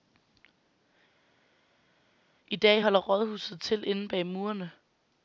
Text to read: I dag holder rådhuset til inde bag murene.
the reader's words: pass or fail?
pass